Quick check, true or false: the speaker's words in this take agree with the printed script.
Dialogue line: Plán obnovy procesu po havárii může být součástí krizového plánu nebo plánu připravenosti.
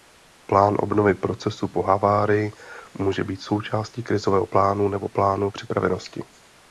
true